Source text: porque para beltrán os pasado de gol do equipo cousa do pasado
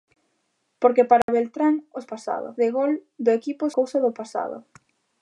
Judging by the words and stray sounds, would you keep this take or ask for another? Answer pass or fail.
fail